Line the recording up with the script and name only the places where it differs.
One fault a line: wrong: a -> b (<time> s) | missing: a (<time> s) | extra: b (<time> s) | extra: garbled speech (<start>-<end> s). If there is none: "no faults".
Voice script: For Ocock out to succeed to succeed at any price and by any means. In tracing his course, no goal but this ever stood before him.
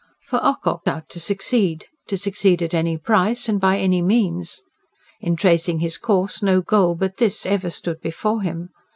no faults